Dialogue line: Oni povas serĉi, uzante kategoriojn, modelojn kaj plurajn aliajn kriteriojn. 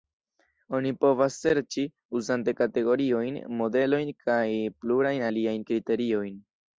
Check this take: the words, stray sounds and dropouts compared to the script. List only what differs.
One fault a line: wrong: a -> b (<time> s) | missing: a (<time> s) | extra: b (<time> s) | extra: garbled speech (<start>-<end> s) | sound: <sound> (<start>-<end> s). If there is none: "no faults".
no faults